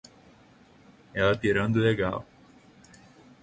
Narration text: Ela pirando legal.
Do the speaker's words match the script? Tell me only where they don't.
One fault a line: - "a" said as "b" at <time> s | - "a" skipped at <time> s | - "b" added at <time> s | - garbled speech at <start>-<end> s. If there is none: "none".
none